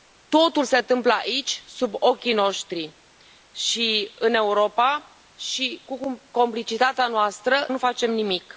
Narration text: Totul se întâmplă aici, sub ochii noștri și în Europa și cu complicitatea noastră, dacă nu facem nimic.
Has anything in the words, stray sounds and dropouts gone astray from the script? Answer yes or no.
yes